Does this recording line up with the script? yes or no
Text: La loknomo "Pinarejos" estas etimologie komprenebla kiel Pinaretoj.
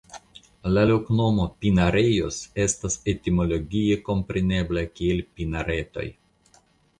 yes